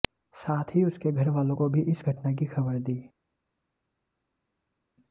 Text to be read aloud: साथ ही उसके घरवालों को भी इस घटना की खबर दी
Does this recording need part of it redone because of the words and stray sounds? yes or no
no